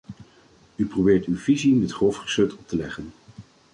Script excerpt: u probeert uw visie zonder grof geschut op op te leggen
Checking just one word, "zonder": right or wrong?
wrong